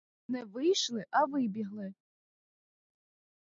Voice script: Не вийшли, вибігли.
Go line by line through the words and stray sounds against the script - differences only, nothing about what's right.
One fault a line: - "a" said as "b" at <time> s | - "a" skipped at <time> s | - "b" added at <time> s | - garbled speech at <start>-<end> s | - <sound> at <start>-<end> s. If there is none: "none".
- "а" added at 1.1 s